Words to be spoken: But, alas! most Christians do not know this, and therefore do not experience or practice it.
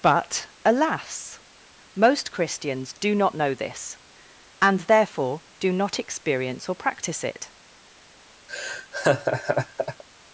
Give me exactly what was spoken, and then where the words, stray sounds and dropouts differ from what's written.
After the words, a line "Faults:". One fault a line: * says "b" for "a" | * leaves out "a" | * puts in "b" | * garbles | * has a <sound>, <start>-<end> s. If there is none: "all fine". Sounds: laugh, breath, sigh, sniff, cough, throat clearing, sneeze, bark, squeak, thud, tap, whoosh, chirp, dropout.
But, alas! most Christians do not know this, and therefore do not experience or practice it.
Faults:
* has a laugh, 8.5-10.0 s